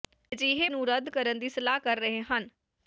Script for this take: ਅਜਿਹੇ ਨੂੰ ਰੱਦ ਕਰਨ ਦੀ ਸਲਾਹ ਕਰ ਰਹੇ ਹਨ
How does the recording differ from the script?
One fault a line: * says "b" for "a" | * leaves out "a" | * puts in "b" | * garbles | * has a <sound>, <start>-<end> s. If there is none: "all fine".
all fine